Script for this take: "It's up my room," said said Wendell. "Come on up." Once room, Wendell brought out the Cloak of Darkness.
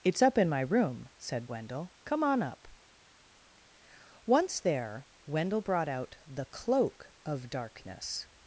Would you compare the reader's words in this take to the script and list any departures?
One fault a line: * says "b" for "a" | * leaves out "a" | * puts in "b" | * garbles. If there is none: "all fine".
* puts in "in"
* leaves out "said"
* says "there" for "room"